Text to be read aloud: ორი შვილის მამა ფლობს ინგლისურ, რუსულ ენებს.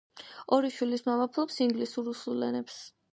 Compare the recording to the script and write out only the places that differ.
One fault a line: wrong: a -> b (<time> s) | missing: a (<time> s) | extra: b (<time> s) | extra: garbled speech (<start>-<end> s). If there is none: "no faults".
no faults